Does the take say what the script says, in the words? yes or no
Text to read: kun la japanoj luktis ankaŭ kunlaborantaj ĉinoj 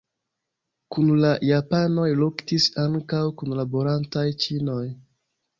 yes